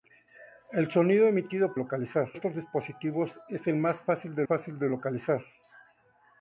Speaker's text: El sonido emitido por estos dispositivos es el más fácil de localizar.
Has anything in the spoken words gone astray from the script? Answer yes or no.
yes